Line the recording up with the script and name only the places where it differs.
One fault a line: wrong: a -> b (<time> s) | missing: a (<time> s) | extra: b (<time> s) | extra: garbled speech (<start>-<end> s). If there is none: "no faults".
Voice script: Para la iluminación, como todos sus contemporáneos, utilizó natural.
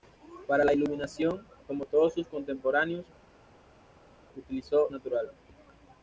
no faults